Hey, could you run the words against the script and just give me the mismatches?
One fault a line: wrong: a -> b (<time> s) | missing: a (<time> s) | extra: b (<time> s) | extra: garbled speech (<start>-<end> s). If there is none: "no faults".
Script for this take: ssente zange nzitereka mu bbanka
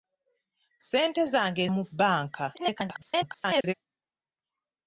missing: nzitereka (1.6 s)
extra: garbled speech (2.5-3.7 s)